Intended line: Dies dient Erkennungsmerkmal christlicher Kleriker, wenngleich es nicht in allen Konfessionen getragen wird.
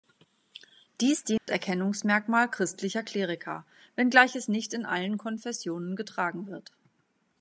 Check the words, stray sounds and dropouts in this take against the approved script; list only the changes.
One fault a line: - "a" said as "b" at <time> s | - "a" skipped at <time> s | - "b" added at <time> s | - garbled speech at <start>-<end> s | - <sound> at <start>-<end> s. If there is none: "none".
- dropout at 1.4-1.5 s